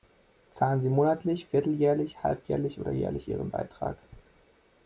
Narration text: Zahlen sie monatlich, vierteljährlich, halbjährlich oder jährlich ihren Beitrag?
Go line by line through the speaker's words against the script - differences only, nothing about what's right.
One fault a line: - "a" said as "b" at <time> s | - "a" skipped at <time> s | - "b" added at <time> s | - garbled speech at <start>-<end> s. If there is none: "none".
none